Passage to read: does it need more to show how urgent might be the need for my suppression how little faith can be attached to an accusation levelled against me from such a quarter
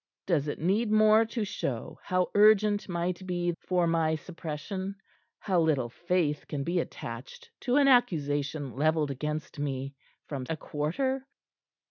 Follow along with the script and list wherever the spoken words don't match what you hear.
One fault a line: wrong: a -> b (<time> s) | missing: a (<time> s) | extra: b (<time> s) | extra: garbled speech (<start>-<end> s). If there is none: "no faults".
missing: the need (3.5 s)
missing: such (10.5 s)